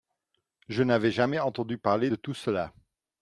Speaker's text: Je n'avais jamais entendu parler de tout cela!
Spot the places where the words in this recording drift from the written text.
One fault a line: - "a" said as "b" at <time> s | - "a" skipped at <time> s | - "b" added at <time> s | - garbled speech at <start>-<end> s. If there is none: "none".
none